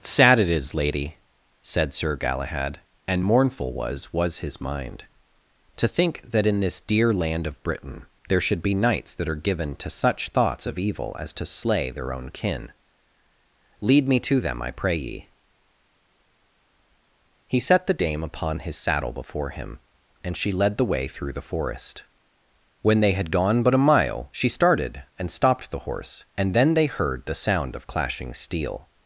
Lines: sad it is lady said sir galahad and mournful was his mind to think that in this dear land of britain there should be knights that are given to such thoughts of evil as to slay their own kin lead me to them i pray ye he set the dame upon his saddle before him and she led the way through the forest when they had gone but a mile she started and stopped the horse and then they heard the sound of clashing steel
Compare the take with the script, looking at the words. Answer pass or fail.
fail